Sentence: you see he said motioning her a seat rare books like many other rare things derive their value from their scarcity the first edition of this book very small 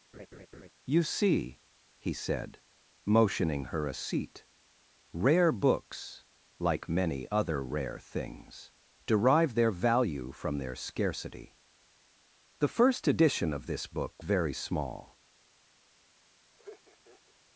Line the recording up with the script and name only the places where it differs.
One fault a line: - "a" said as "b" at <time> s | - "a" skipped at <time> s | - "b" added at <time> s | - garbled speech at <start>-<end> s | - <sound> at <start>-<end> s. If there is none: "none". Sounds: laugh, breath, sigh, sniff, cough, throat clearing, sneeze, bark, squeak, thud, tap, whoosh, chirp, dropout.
- laugh at 0.1-0.7 s
- laugh at 16.6-17.3 s